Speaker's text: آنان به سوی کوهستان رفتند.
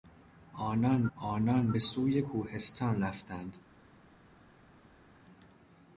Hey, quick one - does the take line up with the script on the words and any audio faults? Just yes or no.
no